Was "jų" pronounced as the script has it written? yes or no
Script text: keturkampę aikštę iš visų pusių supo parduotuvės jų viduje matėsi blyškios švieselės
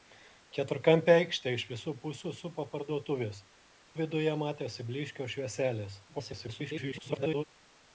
no